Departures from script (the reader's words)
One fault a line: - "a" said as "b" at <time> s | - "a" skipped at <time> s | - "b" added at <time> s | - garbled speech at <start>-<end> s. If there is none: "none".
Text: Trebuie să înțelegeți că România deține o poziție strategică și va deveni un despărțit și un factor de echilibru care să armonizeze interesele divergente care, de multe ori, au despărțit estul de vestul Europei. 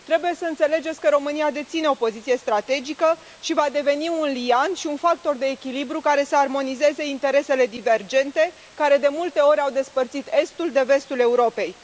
- "despărțit" said as "liant" at 4.3 s